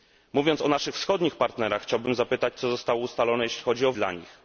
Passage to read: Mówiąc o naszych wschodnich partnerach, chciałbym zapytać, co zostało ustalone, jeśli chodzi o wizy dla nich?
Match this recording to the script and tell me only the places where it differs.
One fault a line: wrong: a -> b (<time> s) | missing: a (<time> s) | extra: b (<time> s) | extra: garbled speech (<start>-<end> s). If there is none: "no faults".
missing: wizy (3.9 s)